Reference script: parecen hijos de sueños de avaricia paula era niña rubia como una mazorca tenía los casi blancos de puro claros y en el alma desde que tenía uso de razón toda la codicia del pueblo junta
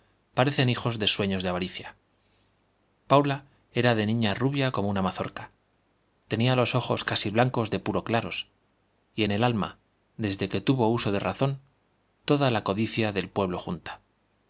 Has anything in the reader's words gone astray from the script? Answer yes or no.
yes